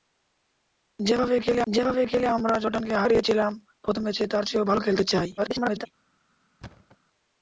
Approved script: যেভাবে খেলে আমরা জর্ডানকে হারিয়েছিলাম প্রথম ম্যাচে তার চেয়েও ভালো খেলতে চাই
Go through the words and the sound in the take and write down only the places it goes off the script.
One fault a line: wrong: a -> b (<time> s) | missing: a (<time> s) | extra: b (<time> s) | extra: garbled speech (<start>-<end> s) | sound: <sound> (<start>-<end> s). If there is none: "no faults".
extra: যেভাবে খেলে (1.7 s)
extra: garbled speech (5.4-5.9 s)
sound: thud (6.6-7.0 s)